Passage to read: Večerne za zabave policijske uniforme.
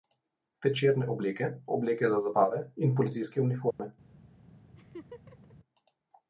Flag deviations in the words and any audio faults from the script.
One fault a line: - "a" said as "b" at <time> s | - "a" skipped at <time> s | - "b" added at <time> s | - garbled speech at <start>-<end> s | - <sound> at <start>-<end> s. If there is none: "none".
- "obleke obleke" added at 1.1 s
- "in" added at 2.8 s
- dropout at 3.7-3.8 s
- laugh at 4.8-5.6 s